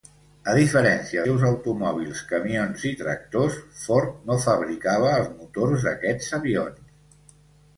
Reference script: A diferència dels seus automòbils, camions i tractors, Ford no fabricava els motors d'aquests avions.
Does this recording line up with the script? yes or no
no